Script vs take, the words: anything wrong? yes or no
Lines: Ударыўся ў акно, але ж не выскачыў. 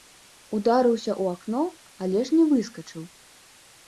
no